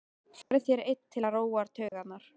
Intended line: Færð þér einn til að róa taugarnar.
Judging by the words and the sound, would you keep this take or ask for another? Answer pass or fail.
fail